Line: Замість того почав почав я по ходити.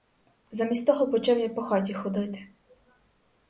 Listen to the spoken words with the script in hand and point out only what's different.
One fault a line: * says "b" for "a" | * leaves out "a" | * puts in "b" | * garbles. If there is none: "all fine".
* leaves out "почав"
* puts in "хаті"